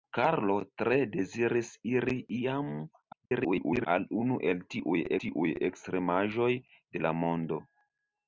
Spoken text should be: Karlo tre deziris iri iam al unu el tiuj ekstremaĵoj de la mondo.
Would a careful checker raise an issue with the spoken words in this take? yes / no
yes